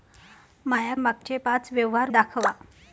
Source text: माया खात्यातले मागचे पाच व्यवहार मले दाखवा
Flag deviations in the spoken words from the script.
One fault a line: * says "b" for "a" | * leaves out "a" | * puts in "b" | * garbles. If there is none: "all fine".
* leaves out "खात्यातले"
* leaves out "मले"